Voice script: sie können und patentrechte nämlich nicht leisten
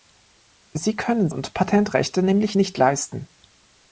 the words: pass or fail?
pass